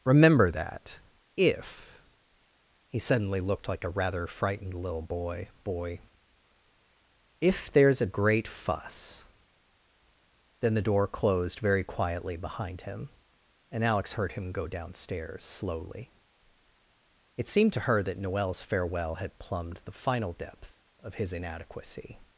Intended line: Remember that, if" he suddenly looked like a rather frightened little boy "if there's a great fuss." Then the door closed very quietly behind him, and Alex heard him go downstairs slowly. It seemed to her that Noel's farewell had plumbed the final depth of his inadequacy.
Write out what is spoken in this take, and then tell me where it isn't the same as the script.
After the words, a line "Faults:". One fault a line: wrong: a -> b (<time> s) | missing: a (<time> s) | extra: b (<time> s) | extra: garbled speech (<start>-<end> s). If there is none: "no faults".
Remember that, if" he suddenly looked like a rather frightened little boy boy "if there's a great fuss." Then the door closed very quietly behind him, and Alex heard him go downstairs slowly. It seemed to her that Noel's farewell had plumbed the final depth of his inadequacy.
Faults:
extra: boy (5.6 s)